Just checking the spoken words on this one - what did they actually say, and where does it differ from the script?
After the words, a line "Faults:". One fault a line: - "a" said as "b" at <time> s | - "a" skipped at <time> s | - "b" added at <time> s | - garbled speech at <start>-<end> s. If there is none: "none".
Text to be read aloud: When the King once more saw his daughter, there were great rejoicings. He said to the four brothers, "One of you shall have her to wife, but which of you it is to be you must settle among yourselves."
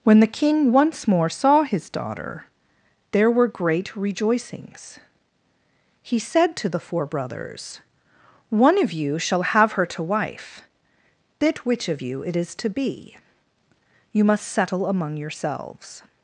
When the King once more saw his daughter, there were great rejoicings. He said to the four brothers, "One of you shall have her to wife, bit which of you it is to be you must settle among yourselves."
Faults:
- "but" said as "bit" at 11.4 s